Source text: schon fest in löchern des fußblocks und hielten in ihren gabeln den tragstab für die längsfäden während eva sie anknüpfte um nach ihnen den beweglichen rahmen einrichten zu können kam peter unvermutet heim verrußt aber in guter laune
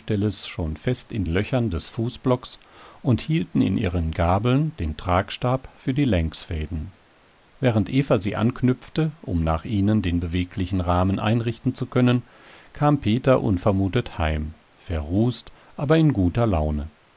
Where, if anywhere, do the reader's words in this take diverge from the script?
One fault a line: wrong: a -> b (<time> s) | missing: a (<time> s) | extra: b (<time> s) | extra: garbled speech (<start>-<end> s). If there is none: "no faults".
no faults